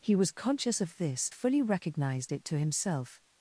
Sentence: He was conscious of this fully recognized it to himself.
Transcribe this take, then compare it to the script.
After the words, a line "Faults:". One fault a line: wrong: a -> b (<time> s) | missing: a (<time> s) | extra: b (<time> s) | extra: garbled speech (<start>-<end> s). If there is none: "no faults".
He was conscious of this fully recognized it to himself.
Faults:
no faults